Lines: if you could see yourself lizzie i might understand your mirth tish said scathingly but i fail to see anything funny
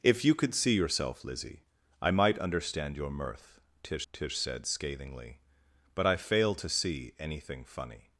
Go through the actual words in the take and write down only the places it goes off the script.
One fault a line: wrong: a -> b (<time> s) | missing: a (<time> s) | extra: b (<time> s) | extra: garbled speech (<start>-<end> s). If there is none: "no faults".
extra: tish (4.1 s)